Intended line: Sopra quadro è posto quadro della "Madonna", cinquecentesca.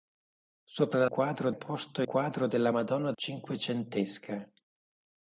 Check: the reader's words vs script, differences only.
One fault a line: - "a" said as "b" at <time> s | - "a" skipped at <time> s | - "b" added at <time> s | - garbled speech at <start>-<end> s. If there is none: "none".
none